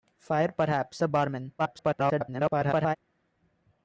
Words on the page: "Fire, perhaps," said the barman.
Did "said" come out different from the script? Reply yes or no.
yes